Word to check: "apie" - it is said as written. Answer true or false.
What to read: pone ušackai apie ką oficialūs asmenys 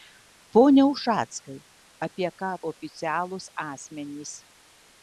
true